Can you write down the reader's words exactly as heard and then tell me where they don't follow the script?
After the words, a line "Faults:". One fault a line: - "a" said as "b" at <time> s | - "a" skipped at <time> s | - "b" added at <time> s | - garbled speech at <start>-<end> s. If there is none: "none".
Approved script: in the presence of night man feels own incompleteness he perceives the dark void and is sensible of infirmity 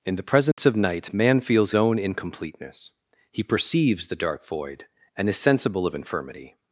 in the presence of night man feels own incompleteness he perceives the dark void and is sensible of infirmity
Faults:
none